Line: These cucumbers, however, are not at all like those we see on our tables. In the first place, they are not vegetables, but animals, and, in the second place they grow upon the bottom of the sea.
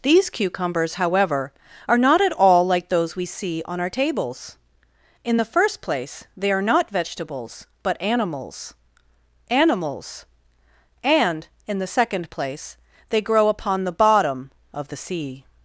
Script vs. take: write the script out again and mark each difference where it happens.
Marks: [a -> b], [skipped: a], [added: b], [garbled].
These cucumbers, however, are not at all like those we see on our tables. In the first place, they are not vegetables, but animals, [added: animals] and, in the second place they grow upon the bottom of the sea.